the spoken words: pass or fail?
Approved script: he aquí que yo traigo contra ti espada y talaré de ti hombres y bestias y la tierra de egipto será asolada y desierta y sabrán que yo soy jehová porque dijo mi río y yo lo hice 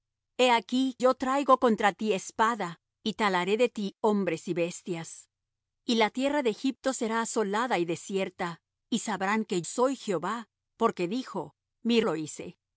fail